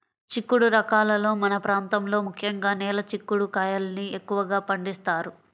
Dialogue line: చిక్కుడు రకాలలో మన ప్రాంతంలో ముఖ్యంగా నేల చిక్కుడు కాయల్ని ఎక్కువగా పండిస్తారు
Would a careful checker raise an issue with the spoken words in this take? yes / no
no